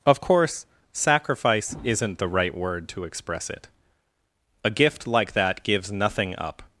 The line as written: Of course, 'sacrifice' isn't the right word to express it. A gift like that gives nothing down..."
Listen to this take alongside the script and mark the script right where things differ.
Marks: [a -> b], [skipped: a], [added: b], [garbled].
Of course, 'sacrifice' isn't the right word to express it. A gift like that gives nothing [down..." -> up]